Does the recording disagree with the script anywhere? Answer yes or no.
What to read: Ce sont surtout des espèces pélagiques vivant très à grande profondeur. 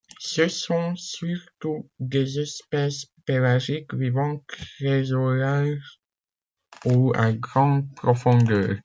yes